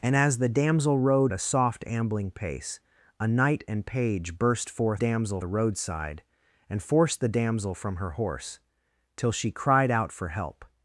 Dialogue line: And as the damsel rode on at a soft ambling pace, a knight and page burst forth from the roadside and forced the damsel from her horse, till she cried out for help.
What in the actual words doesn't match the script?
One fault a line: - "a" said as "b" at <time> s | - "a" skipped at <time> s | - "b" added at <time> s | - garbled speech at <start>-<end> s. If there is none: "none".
- "on at" skipped at 1.3 s
- "from" said as "damsel" at 4.9 s